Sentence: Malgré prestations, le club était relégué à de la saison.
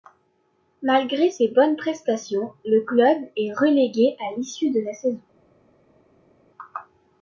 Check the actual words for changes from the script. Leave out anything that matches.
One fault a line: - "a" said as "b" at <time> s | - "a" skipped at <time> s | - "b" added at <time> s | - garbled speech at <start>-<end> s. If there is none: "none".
- "ses bonnes" added at 1.3 s
- "était" said as "est" at 3.4 s
- "l'issue" added at 4.4 s